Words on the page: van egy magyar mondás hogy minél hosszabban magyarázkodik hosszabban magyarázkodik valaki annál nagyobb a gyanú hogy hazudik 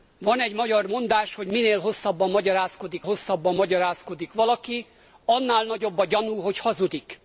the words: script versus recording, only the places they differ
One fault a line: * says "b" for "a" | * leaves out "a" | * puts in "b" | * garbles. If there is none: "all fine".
all fine